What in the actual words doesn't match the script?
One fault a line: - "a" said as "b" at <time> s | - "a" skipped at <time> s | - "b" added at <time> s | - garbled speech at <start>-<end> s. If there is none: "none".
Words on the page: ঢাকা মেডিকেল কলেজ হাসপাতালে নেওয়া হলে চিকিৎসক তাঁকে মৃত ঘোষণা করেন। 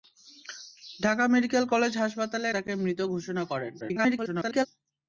- "নেওয়া হলে চিকিৎসক" skipped at 2.5 s
- garbled speech at 3.8-4.7 s